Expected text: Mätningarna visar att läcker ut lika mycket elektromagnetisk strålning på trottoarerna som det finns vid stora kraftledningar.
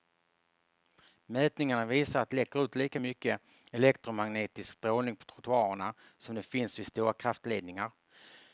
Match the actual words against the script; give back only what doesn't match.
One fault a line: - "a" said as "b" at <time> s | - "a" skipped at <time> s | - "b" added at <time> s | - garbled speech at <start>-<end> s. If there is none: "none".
none